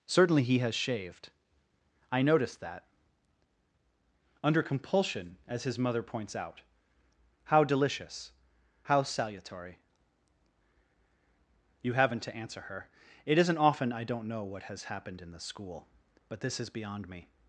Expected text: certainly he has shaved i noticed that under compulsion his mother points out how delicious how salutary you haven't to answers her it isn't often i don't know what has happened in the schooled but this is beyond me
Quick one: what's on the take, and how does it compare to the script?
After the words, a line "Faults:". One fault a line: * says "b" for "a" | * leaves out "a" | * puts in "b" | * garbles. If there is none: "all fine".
certainly he has shaved i noticed that under compulsion as his mother points out how delicious how salutary you haven't to answer her it isn't often i don't know what has happened in the school but this is beyond me
Faults:
* puts in "as"
* says "answer" for "answers"
* says "school" for "schooled"